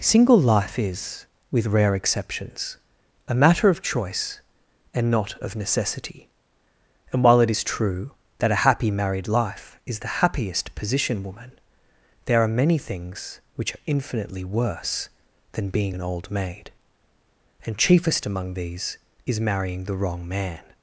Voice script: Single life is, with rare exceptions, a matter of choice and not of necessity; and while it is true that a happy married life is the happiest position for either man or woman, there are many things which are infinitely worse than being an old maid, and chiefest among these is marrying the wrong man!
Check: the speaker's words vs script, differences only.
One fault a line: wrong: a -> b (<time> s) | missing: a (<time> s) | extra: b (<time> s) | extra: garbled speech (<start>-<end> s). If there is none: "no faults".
missing: for either man or (11.2 s)